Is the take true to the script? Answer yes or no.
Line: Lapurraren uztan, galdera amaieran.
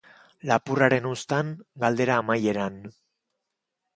yes